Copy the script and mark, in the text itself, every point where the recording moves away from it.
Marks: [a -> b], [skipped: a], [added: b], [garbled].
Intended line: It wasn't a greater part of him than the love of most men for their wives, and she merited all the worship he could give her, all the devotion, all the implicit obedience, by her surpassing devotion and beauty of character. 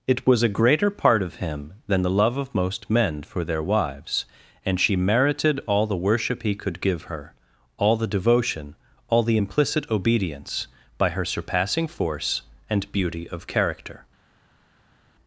It [wasn't -> was] a greater part of him than the love of most men for their wives, and she merited all the worship he could give her, all the devotion, all the implicit obedience, by her surpassing [devotion -> force] and beauty of character.